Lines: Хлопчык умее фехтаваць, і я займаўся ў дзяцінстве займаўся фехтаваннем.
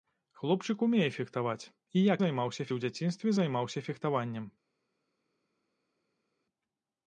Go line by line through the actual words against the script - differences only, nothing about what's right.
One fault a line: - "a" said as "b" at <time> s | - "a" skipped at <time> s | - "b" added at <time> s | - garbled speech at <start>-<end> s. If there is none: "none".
none